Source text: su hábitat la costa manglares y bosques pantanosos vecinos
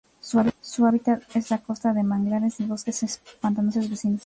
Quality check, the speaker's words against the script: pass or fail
fail